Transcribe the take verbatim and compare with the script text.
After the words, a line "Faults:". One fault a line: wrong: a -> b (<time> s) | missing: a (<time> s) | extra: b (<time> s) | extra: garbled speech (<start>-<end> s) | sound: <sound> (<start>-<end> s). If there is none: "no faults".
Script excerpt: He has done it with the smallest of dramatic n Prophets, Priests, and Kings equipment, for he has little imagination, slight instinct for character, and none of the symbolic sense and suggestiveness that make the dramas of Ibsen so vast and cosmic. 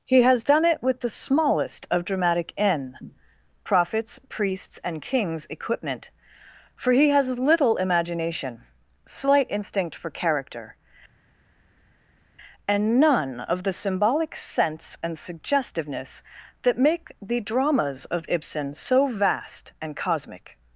He has done it with the smallest of dramatic n Prophets, Priests, and Kings equipment, for he has little imagination, slight instinct for character, and none of the symbolic sense and suggestiveness that make the dramas of Ibsen so vast and cosmic.
Faults:
no faults